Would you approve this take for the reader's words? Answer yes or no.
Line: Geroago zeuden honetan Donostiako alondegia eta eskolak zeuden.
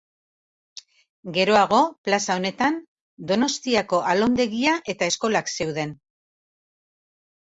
no